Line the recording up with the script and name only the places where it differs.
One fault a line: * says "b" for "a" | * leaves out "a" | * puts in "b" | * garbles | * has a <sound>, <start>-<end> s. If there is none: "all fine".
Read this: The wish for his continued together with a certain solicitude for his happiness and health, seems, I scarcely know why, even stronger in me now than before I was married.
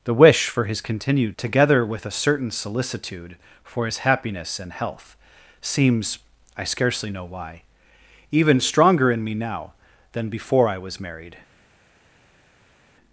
all fine